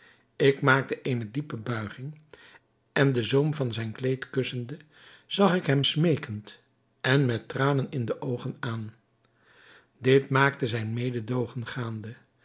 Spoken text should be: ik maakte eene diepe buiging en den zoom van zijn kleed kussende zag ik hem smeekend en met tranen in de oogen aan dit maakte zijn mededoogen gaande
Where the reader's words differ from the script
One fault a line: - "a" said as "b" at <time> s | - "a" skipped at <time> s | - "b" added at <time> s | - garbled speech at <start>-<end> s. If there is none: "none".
none